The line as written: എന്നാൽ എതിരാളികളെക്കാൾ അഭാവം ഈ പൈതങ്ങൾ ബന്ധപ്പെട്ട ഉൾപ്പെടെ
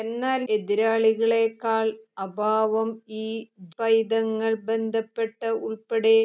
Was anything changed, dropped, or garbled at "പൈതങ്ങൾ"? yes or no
no